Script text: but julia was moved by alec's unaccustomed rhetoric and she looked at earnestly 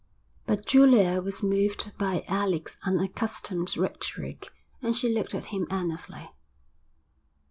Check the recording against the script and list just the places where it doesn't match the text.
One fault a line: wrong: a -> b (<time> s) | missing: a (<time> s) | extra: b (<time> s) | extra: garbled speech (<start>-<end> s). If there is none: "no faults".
extra: him (5.5 s)